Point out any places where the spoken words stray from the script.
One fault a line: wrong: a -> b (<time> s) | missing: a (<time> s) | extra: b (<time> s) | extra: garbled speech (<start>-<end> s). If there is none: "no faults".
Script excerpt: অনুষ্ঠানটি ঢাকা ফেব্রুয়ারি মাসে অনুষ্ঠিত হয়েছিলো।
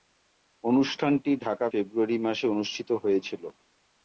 no faults